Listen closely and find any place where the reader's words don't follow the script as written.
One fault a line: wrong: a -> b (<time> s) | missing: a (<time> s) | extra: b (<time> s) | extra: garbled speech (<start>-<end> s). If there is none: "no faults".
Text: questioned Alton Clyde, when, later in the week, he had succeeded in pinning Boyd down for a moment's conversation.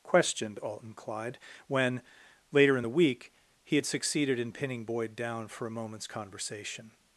no faults